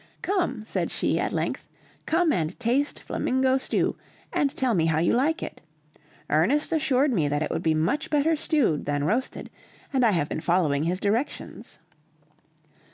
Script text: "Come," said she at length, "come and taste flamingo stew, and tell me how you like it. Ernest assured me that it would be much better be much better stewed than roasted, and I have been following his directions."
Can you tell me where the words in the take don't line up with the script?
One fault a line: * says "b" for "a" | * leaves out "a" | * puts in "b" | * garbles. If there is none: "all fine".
* leaves out "be much better"